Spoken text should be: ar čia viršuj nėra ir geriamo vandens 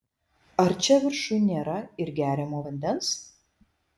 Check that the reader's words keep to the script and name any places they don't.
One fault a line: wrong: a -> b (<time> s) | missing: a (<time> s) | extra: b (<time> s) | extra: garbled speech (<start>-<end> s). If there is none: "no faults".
no faults